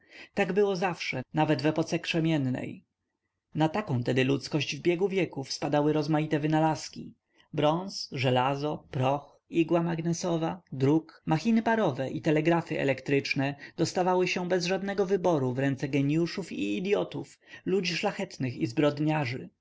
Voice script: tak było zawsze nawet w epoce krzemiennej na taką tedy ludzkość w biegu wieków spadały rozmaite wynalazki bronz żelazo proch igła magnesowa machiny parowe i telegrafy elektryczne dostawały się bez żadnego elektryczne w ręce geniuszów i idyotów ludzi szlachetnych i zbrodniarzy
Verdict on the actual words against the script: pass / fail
fail